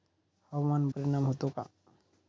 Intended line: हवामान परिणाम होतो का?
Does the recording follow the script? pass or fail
pass